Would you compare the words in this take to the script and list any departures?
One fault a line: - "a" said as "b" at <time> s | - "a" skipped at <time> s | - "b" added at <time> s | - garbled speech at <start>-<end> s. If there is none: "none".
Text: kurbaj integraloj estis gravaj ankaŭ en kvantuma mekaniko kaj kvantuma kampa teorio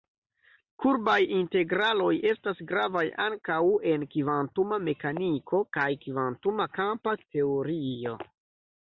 - "estis" said as "estas" at 2.3 s